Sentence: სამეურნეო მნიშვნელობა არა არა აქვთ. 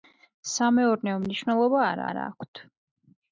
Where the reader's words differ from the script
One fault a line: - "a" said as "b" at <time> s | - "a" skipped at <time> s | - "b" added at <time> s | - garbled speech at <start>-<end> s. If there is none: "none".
none